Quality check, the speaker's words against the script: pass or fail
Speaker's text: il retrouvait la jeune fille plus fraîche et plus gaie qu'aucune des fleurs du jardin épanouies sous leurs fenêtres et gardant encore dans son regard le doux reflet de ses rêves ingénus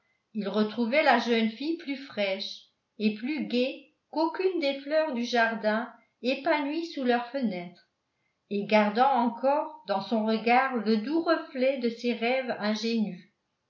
pass